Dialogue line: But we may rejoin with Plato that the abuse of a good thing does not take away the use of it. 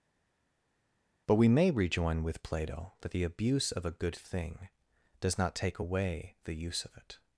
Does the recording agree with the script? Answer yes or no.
yes